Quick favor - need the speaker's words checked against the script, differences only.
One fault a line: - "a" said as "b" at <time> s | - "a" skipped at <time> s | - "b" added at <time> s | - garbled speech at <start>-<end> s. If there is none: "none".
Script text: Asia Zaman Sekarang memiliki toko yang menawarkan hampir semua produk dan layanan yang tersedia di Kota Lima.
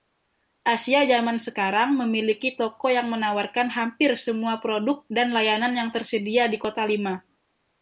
none